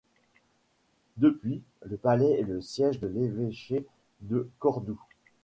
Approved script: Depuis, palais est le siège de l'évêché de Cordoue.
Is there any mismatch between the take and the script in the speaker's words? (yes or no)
yes